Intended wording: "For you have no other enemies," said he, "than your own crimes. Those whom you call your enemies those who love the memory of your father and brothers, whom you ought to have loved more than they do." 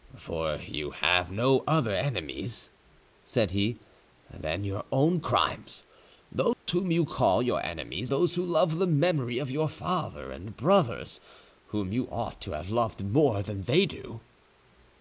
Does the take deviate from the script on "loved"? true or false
false